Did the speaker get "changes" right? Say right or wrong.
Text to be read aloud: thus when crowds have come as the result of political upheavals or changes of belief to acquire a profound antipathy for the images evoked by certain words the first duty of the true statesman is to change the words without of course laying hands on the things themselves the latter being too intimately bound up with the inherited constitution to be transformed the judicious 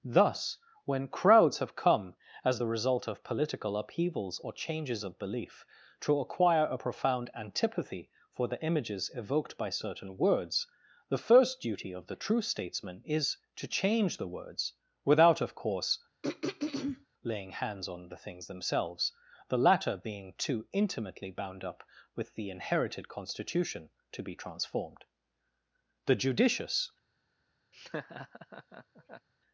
right